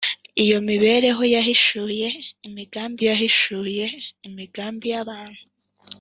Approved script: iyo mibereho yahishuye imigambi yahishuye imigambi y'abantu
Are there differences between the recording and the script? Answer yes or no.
no